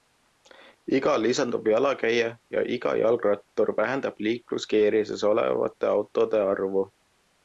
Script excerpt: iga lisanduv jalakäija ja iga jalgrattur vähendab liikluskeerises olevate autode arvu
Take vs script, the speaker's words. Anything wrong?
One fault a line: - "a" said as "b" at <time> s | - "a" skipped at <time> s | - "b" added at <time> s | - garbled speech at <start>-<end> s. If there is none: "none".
none